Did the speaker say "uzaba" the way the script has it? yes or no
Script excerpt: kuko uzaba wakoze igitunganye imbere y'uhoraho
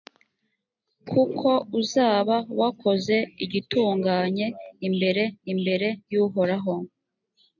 yes